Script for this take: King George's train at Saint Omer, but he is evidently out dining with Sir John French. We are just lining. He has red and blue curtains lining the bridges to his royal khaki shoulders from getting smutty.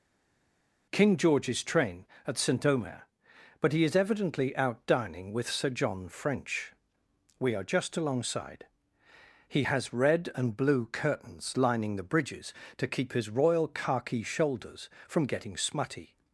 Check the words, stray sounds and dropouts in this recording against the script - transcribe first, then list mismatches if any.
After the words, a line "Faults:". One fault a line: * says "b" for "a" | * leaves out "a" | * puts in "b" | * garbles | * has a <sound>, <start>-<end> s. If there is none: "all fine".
King George's train at Saint Omer, but he is evidently out dining with Sir John French. We are just alongside. He has red and blue curtains lining the bridges to keep his royal khaki shoulders from getting smutty.
Faults:
* says "alongside" for "lining"
* puts in "keep"